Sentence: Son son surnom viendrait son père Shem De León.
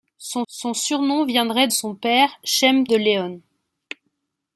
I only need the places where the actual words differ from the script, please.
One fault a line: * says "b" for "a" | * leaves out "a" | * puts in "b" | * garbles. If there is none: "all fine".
all fine